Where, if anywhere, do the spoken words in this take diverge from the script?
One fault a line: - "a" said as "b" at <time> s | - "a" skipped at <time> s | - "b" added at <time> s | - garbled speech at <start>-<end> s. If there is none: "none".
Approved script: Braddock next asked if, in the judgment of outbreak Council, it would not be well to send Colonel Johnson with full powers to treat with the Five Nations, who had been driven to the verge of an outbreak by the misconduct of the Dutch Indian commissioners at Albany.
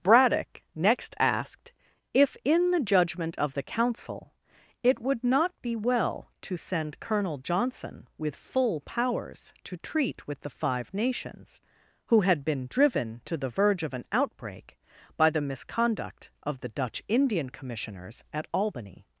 - "outbreak" said as "the" at 3.5 s